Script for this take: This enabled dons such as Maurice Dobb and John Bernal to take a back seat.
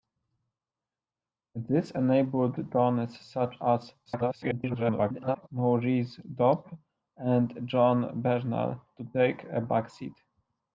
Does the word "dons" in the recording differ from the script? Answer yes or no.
no